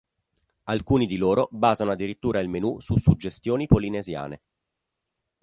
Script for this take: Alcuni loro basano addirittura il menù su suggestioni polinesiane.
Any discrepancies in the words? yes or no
yes